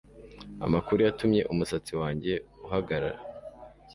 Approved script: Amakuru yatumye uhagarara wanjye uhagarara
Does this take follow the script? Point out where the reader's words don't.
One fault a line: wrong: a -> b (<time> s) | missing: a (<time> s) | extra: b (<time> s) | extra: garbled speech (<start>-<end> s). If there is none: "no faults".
wrong: uhagarara -> umusatsi (1.5 s)